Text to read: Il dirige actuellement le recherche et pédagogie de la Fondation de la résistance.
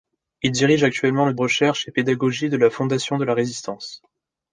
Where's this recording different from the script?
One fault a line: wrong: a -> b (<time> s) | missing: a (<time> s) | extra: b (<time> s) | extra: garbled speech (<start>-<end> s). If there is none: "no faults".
no faults